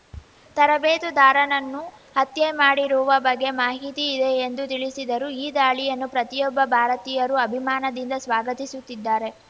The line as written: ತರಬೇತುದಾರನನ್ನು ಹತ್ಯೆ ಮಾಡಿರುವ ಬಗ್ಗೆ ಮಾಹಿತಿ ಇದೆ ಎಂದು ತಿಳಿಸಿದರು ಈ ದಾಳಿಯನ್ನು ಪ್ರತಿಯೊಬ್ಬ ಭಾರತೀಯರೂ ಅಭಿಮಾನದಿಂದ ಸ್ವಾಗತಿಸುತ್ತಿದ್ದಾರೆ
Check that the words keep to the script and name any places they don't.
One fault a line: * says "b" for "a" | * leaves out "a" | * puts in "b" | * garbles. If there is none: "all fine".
all fine